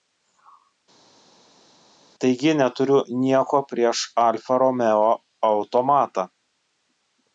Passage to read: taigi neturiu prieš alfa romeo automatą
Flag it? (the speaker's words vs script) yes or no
yes